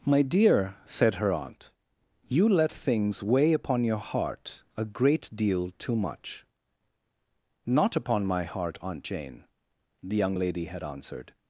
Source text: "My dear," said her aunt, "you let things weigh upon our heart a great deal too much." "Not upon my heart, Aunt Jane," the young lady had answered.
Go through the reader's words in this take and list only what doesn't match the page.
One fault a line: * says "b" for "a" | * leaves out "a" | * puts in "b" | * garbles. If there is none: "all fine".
* says "your" for "our"